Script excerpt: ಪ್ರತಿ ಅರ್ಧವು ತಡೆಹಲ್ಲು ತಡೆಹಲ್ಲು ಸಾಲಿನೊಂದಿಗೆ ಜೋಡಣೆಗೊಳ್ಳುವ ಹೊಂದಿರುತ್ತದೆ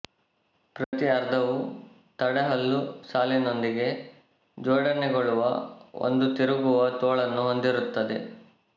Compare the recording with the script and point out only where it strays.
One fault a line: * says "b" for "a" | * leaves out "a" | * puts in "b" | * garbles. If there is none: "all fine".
* leaves out "ತಡೆಹಲ್ಲು"
* puts in "ಒಂದು ತಿರುಗುವ ತೋಳನ್ನು"